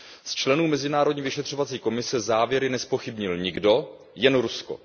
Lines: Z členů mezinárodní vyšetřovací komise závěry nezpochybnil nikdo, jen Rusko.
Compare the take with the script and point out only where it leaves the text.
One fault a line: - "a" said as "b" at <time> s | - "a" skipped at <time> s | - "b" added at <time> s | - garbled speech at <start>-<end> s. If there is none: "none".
none